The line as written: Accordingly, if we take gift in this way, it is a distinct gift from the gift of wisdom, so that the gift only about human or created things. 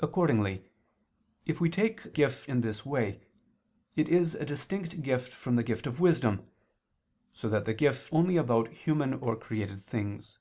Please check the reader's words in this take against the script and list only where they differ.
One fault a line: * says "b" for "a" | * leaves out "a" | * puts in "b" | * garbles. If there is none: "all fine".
all fine